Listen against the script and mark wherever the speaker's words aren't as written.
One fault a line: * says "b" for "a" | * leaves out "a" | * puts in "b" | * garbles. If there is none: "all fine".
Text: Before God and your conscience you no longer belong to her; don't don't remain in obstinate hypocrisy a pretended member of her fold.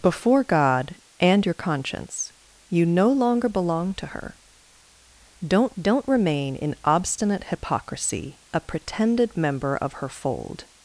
all fine